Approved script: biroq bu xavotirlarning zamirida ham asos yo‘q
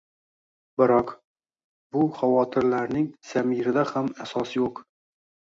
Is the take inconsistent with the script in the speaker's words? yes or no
no